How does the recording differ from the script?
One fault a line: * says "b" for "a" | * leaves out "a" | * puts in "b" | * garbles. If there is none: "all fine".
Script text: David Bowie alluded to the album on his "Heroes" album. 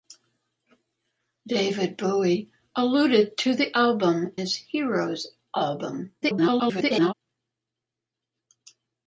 * leaves out "on"
* garbles